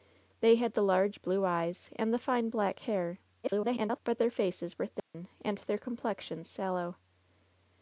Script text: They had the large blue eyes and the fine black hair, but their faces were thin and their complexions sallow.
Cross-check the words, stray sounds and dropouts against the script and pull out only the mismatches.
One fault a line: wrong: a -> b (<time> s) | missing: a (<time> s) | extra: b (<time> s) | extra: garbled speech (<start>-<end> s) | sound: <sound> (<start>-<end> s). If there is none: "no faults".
extra: garbled speech (3.4-4.0 s)
sound: dropout (5.0-5.1 s)